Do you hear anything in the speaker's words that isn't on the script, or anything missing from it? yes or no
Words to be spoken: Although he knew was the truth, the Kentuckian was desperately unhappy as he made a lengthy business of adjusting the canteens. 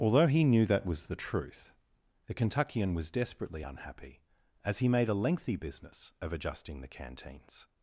yes